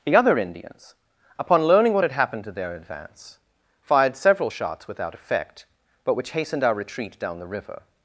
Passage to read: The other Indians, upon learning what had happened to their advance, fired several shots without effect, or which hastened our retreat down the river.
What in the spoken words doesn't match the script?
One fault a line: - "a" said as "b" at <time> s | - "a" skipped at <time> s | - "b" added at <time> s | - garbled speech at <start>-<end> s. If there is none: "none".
- "or" said as "but" at 6.0 s